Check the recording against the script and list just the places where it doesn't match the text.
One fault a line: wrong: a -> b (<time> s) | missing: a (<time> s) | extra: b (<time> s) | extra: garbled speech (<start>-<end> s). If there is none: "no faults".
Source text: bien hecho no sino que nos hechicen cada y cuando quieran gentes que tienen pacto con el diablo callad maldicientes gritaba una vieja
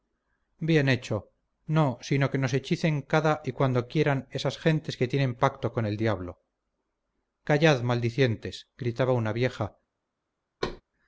extra: esas (4.3 s)